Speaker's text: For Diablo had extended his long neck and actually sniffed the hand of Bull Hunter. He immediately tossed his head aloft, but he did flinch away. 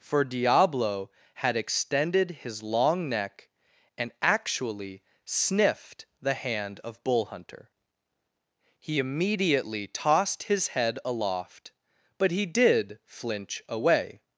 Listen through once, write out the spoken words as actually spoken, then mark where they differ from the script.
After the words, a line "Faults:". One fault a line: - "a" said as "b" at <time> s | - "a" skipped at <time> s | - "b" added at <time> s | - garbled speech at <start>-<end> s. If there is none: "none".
For Diablo had extended his long neck and actually sniffed the hand of Bull Hunter. He immediately tossed his head aloft, but he did flinch away.
Faults:
none